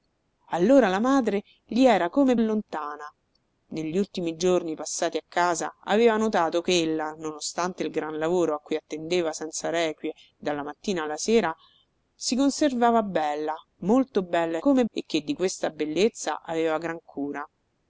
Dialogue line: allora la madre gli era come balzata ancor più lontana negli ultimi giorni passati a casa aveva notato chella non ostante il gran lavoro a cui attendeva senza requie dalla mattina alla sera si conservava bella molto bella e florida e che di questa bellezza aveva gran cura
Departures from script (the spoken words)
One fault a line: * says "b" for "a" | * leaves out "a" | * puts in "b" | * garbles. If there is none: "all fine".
* leaves out "balzata ancor più"
* says "come" for "florida"